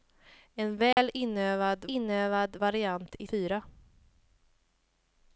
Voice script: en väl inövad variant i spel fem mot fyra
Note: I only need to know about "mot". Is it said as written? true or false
false